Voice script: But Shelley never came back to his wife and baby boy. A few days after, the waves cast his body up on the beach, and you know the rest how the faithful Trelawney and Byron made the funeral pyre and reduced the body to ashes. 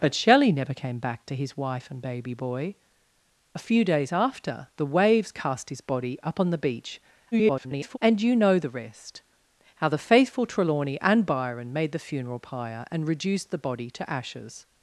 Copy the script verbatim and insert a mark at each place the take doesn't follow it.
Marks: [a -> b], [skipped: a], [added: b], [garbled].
But Shelley never came back to his wife and baby boy. A few days after, the waves cast his body up on the beach, [garbled] and you know the rest how the faithful Trelawney and Byron made the funeral pyre and reduced the body to ashes.